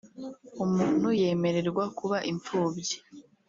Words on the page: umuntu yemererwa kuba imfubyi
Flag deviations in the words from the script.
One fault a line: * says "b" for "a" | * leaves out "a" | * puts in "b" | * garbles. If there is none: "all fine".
all fine